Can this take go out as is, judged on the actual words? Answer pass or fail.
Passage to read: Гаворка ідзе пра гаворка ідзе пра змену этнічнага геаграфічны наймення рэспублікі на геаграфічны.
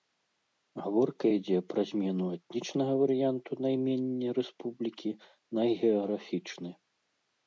fail